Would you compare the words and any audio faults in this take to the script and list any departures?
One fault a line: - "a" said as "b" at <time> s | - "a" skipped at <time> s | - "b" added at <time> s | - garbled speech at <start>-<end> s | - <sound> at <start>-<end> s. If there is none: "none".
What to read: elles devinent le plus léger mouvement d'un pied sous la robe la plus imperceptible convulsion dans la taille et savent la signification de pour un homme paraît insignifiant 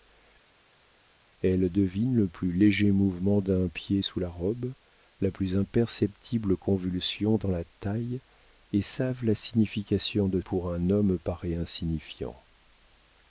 none